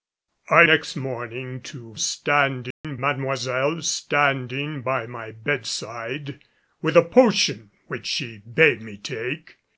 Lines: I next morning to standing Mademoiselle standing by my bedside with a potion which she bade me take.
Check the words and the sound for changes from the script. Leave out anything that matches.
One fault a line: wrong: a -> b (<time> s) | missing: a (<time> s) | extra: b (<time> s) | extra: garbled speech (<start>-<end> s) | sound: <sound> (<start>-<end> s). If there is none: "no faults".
sound: dropout (2.7-2.8 s)